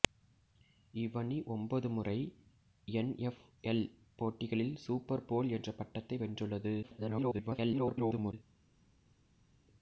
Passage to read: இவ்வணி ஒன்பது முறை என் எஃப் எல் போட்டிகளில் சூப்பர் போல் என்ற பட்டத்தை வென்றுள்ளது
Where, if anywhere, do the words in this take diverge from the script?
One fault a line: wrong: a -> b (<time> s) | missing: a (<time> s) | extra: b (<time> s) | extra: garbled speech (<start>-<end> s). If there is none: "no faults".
extra: garbled speech (6.8-8.3 s)